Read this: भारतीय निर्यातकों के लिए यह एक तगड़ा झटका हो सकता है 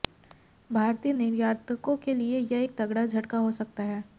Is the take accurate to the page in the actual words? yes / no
yes